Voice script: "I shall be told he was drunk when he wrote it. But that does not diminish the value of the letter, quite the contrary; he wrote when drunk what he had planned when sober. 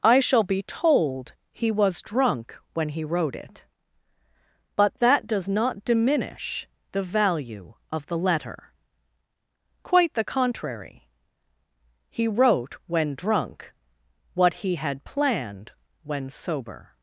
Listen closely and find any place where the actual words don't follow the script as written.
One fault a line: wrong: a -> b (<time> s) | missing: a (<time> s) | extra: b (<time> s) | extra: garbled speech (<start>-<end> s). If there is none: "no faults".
no faults